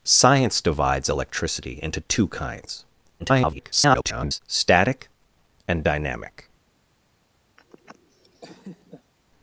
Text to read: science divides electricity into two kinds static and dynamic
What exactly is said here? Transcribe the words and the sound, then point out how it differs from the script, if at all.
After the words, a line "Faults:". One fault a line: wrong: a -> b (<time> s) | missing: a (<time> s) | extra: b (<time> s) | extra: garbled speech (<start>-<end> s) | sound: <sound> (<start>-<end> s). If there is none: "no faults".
science divides electricity into two kinds [garbled] static and dynamic
Faults:
extra: garbled speech (3.2-4.4 s)
sound: laugh (7.6-9.1 s)